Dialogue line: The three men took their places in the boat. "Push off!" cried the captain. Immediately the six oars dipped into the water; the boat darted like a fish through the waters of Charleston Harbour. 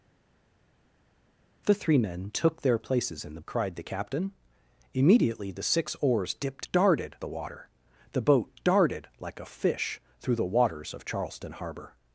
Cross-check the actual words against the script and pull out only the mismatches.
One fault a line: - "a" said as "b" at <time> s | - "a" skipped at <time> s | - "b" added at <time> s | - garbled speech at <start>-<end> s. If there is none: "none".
- "boat Push off" skipped at 3.4 s
- "into" said as "darted" at 6.7 s